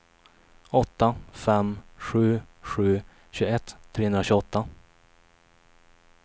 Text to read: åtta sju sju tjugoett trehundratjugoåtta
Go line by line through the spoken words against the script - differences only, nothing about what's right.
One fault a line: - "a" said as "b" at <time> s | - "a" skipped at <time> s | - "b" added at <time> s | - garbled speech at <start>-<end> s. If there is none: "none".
- "fem" added at 1.3 s